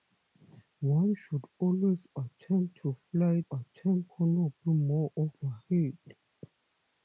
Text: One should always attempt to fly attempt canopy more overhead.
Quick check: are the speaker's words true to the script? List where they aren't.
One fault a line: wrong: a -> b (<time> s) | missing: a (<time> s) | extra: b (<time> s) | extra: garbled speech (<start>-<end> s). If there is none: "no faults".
no faults